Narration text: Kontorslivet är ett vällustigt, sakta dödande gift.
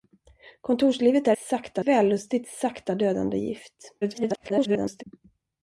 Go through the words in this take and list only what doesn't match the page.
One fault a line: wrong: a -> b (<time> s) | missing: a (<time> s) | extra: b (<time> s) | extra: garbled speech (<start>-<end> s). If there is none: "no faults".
wrong: ett -> sakta (1.4 s)
extra: garbled speech (4.0-5.0 s)